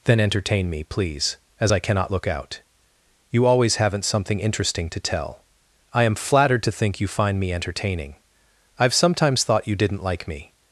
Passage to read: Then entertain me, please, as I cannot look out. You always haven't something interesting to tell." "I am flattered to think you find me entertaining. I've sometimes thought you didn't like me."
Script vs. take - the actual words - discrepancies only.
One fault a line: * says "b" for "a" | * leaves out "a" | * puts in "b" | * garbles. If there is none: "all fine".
all fine